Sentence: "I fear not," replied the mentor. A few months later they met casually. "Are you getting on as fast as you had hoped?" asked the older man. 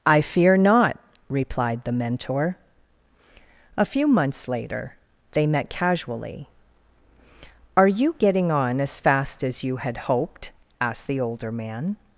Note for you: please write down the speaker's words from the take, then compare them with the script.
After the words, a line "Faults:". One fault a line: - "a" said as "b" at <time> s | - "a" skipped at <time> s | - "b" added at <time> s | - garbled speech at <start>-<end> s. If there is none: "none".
"I fear not," replied the mentor. A few months later they met casually. "Are you getting on as fast as you had hoped?" asked the older man.
Faults:
none